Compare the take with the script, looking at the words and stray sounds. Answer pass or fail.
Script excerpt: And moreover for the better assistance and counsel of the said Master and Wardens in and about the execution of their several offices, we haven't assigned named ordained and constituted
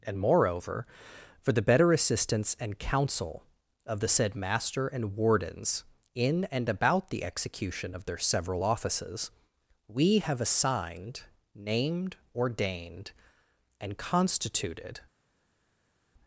fail